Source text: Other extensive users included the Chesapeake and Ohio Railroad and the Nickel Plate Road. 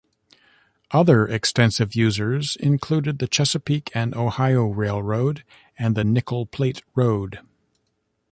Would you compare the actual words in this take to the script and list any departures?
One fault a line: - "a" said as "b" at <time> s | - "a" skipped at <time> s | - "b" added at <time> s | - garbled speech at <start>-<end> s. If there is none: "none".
none